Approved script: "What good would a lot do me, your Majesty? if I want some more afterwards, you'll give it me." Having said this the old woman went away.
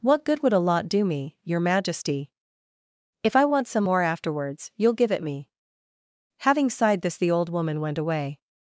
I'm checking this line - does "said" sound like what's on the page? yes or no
no